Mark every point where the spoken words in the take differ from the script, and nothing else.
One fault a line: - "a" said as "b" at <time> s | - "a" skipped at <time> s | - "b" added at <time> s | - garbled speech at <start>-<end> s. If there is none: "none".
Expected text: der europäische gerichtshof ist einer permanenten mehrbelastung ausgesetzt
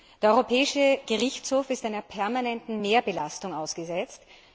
none